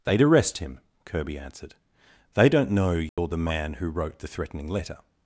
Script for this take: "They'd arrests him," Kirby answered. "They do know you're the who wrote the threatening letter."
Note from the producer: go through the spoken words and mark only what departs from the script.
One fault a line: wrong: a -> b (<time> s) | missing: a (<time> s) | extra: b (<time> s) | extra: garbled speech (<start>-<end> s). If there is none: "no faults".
wrong: arrests -> arrest (0.2 s)
wrong: do -> don't (2.5 s)
extra: man (3.4 s)